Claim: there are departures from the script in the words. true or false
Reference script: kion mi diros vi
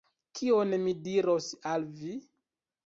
true